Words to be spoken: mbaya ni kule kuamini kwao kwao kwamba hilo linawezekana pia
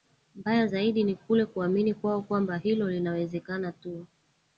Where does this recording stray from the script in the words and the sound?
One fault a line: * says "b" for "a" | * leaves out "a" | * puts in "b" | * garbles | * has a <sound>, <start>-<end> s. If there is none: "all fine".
* puts in "zaidi"
* leaves out "kwao"
* says "tu" for "pia"